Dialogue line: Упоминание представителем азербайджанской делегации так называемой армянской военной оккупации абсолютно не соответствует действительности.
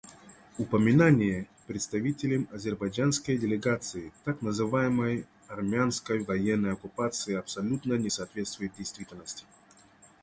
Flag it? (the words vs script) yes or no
no